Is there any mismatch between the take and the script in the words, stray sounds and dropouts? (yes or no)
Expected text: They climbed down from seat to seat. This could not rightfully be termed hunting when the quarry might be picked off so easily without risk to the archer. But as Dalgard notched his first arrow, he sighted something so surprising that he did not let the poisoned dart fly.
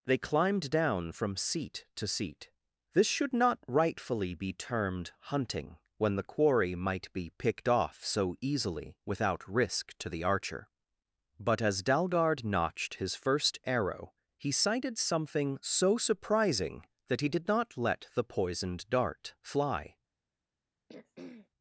yes